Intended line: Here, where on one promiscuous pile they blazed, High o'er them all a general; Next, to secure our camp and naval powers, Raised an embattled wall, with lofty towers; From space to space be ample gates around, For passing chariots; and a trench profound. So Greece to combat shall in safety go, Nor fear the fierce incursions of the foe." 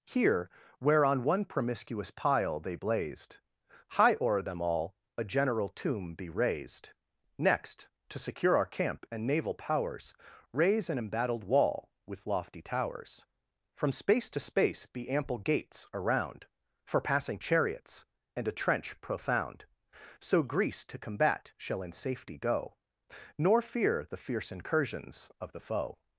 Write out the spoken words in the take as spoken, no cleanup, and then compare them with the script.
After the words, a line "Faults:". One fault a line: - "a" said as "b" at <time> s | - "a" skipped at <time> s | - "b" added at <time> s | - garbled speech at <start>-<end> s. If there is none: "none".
Here, where on one promiscuous pile they blazed, High o'er them all a general tomb be raised; Next, to secure our camp and naval powers, Raise an embattled wall, with lofty towers; From space to space be ample gates around, For passing chariots; and a trench profound. So Greece to combat shall in safety go, Nor fear the fierce incursions of the foe."
Faults:
- "tomb be raised" added at 5.7 s
- "Raised" said as "Raise" at 10.5 s